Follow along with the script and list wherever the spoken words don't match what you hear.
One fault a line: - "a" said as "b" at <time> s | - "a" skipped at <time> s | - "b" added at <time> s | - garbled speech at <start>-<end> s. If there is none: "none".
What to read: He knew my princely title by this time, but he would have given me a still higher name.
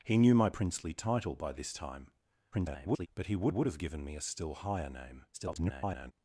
- garbled speech at 2.5-3.1 s
- "would" added at 3.5 s
- garbled speech at 5.3-6.1 s